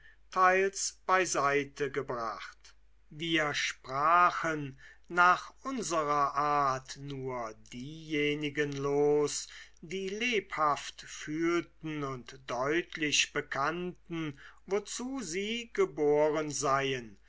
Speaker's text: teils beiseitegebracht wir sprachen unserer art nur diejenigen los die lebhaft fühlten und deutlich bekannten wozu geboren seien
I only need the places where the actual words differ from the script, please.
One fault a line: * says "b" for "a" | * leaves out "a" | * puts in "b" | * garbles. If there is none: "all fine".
* puts in "nach"
* puts in "sie"